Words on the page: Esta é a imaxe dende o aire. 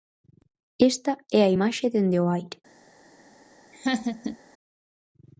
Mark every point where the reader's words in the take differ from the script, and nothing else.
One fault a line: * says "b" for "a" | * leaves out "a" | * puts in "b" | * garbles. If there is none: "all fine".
all fine